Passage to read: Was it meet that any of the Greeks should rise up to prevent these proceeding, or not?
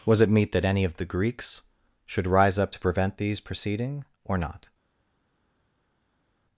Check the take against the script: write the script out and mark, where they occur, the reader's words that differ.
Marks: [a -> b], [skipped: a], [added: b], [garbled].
Was it meet that any of the Greeks should rise up to prevent these proceeding, or not?